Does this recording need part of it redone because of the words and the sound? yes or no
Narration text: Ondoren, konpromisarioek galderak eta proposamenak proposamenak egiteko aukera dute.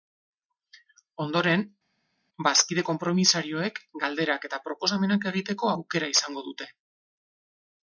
yes